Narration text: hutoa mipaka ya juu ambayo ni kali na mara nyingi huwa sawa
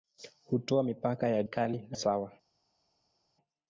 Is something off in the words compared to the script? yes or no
yes